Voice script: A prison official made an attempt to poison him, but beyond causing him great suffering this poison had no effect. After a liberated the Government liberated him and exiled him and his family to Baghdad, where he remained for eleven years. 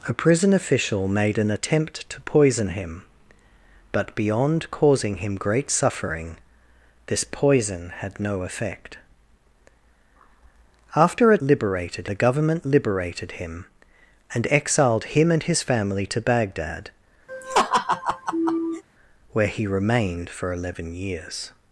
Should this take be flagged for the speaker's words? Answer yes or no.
no